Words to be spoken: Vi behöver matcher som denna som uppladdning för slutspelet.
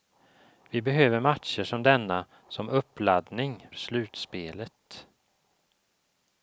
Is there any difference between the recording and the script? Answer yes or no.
yes